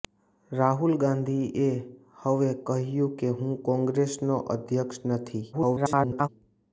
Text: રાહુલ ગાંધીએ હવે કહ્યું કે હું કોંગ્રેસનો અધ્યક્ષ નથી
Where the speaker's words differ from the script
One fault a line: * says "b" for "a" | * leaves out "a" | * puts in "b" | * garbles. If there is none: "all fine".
* garbles